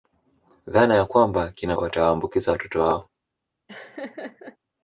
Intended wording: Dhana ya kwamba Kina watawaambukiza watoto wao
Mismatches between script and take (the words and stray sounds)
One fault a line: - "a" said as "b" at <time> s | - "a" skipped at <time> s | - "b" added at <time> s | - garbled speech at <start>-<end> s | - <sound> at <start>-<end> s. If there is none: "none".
- laugh at 3.7-4.6 s